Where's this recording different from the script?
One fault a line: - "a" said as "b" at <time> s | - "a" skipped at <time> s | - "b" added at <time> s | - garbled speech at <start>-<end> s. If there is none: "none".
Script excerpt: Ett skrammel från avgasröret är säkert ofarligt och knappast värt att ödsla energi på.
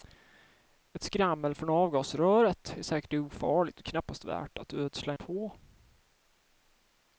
- "energi" skipped at 5.1 s